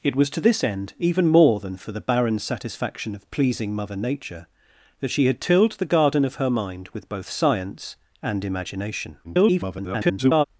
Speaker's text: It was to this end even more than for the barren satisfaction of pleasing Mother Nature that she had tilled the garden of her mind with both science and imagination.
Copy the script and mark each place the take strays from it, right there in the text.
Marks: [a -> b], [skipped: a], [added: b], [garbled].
It was to this end even more than for the barren satisfaction of pleasing Mother Nature that she had tilled the garden of her mind with both science and imagination. [garbled]